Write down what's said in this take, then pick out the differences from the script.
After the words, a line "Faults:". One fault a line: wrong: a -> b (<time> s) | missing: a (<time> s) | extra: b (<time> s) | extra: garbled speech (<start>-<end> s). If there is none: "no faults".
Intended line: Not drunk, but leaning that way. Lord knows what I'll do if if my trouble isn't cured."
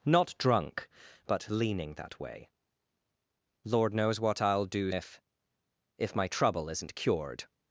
Not drunk, but leaning that way. Lord knows what I'll do if if my trouble isn't cured."
Faults:
no faults